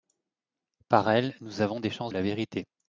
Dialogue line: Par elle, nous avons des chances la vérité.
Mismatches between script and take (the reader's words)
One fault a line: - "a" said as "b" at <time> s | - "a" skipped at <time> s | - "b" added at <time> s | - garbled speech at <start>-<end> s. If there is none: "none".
none